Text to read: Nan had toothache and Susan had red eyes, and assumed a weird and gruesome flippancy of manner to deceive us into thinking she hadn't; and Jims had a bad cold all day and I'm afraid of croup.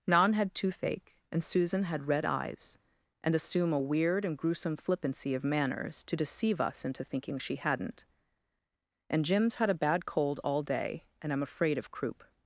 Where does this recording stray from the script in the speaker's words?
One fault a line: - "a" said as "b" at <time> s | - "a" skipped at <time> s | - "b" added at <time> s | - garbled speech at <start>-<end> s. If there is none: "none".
- "assumed" said as "assume" at 3.4 s
- "manner" said as "manners" at 5.4 s